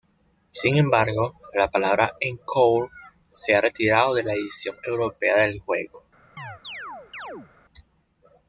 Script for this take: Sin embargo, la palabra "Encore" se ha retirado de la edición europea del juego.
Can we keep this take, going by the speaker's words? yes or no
yes